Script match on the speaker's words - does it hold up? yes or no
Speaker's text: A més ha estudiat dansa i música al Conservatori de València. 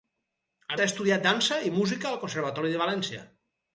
no